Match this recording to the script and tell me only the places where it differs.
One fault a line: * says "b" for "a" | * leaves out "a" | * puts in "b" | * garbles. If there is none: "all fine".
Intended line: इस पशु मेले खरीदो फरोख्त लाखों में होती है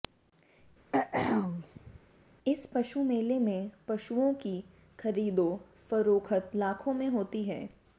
* puts in "में पशुओं की"